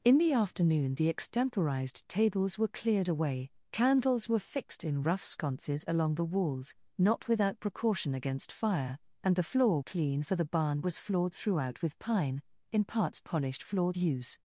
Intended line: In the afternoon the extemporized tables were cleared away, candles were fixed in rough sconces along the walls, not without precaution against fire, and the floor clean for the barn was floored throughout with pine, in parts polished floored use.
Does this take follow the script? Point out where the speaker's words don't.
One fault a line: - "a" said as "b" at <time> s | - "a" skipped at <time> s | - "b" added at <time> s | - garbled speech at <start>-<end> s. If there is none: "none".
none